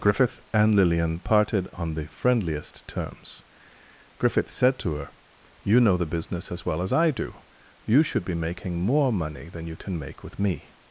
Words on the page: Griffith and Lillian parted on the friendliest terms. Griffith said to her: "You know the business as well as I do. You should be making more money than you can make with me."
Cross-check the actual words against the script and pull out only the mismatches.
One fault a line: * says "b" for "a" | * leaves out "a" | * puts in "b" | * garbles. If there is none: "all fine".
all fine